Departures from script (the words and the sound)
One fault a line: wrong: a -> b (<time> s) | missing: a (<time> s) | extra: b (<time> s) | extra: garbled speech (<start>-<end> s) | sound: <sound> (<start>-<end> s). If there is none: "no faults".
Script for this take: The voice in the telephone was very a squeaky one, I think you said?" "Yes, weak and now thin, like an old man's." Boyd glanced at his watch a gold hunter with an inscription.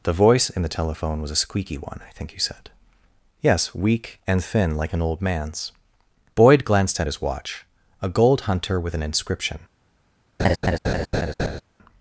missing: very (1.3 s)
missing: now (4.4 s)
sound: laugh (10.4-11.6 s)